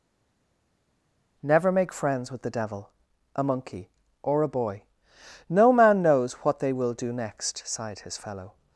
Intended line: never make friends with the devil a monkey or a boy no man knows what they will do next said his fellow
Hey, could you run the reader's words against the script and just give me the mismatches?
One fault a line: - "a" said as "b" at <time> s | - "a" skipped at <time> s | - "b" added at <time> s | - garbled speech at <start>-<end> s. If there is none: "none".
- "said" said as "sighed" at 7.6 s